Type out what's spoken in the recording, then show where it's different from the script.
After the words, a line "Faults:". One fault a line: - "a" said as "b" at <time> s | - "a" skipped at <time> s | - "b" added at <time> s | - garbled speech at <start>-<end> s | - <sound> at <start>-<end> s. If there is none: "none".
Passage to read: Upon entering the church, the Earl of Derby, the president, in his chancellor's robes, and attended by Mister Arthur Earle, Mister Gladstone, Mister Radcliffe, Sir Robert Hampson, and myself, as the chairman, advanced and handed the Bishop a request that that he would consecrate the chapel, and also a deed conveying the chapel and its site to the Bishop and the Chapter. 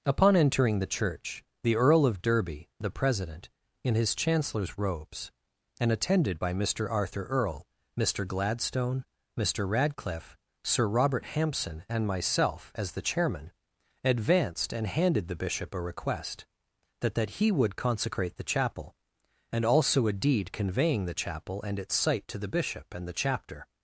Upon entering the church, the Earl of Derby, the president, in his chancellor's robes, and attended by Mister Arthur Earle, Mister Gladstone, Mister Radcliffe, Sir Robert Hampson, and myself, as the chairman, advanced and handed the Bishop a request that that he would consecrate the chapel, and also a deed conveying the chapel and its site to the Bishop and the Chapter.
Faults:
none